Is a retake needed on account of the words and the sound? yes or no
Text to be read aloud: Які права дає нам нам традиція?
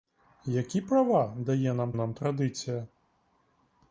no